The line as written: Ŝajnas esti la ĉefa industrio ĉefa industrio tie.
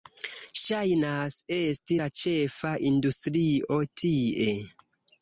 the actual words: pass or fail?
fail